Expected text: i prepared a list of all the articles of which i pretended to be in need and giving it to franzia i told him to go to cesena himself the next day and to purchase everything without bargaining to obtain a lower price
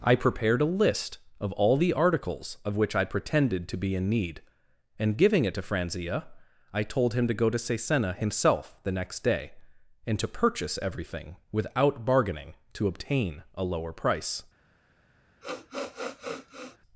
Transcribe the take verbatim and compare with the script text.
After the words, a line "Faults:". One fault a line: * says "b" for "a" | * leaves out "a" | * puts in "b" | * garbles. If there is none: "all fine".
i prepared a list of all the articles of which i pretended to be in need and giving it to franzia i told him to go to cesena himself the next day and to purchase everything without bargaining to obtain a lower price
Faults:
all fine